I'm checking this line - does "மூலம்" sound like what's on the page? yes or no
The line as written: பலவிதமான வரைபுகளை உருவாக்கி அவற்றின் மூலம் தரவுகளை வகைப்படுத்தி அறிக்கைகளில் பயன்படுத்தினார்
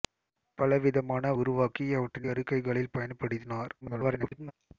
no